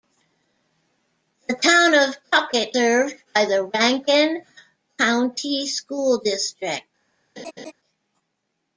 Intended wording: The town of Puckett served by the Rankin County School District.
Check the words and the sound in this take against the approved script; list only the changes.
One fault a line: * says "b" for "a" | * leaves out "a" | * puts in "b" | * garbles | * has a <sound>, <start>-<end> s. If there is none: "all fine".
* has a laugh, 7.4-7.7 s